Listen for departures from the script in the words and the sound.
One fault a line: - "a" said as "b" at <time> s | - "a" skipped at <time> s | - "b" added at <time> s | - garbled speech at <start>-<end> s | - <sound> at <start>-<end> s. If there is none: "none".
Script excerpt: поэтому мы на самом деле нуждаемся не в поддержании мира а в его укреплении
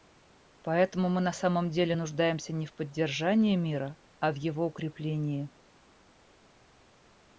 none